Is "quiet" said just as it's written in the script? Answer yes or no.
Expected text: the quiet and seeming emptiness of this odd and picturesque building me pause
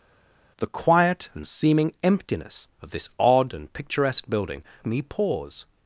yes